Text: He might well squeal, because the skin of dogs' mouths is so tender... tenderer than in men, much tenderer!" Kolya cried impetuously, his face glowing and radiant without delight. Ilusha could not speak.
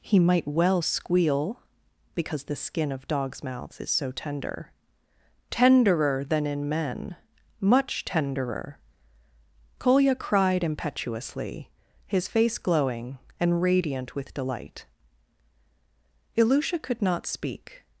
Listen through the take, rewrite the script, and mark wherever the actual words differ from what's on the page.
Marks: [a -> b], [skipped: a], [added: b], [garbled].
He might well squeal, because the skin of dogs' mouths is so tender... tenderer than in men, much tenderer!" Kolya cried impetuously, his face glowing and radiant [without -> with] delight. Ilusha could not speak.